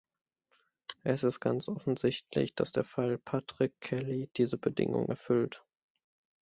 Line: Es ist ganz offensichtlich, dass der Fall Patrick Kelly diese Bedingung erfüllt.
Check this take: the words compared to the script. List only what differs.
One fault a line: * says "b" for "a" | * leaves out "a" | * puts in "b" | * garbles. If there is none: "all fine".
all fine